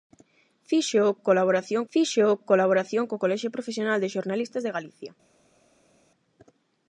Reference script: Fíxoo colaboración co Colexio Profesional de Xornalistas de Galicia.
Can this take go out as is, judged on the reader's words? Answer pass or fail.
fail